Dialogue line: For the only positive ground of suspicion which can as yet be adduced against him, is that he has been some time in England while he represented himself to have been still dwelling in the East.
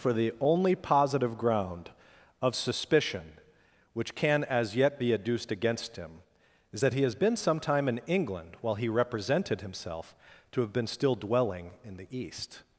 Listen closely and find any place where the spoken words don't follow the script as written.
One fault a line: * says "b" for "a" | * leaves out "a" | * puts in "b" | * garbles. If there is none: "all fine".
all fine